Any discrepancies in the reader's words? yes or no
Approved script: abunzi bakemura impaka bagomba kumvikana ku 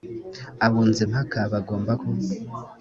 yes